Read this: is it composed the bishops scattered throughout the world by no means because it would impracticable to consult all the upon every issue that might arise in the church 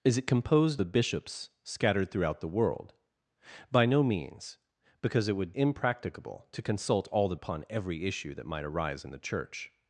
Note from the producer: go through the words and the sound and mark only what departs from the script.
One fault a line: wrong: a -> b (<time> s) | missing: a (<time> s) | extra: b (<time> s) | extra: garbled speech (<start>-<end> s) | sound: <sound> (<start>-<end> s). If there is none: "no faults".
no faults